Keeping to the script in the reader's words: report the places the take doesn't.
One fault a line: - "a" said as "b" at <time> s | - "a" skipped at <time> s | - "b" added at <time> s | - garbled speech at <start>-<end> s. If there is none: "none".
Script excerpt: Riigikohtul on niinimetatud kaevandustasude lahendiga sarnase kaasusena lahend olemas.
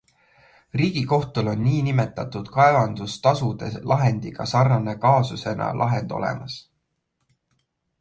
none